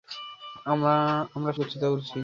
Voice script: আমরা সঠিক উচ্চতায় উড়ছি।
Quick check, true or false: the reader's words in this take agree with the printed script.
false